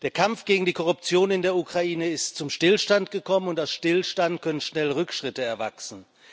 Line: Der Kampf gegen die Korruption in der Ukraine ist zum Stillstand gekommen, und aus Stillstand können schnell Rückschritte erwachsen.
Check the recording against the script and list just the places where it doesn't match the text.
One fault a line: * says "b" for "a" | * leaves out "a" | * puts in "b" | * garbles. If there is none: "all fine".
all fine